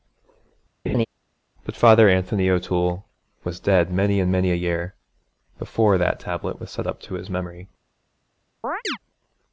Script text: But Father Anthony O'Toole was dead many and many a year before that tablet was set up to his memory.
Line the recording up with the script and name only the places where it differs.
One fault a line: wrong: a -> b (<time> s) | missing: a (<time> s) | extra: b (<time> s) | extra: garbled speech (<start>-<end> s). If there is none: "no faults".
no faults